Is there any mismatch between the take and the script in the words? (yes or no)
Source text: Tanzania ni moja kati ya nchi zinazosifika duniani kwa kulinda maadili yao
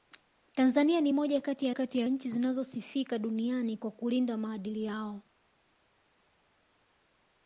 yes